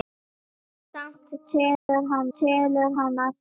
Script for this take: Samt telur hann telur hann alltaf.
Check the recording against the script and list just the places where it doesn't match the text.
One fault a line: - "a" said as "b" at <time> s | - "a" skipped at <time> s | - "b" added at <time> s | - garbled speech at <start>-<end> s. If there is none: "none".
none